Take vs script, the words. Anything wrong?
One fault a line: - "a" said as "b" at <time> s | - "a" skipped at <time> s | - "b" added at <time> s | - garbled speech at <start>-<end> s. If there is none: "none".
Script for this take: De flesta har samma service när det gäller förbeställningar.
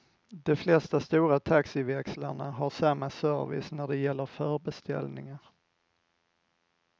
- "stora taxiväxlarna" added at 1.0 s